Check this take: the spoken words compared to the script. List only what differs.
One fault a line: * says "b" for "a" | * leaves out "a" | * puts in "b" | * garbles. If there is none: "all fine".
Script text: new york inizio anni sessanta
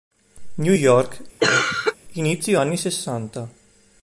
all fine